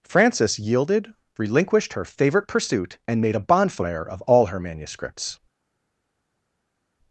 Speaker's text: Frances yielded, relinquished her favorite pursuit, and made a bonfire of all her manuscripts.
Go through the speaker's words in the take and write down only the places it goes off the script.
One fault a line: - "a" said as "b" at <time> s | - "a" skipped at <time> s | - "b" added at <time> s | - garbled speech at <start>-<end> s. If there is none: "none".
none